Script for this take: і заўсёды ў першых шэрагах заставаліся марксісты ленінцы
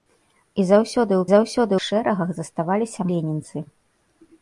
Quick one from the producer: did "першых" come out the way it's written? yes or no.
no